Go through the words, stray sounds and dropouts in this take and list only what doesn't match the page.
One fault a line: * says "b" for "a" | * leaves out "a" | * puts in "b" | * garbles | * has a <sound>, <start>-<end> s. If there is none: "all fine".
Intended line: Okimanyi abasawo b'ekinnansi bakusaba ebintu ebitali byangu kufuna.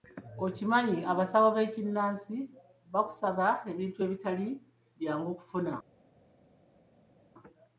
all fine